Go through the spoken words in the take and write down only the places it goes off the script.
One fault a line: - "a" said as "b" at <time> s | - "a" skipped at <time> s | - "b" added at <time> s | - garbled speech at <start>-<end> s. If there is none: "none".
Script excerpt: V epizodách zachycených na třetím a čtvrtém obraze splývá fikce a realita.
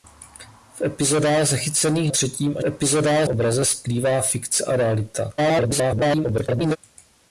- "na" skipped at 2.1 s
- "čtvrtém" said as "epizodách" at 2.6 s
- garbled speech at 5.4-6.8 s